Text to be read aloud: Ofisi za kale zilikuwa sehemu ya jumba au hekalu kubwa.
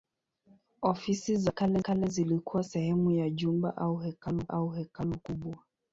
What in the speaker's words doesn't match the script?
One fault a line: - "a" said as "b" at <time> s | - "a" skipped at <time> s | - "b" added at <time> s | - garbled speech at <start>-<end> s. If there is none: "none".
- "kale" added at 1.8 s
- "au hekalu" added at 4.5 s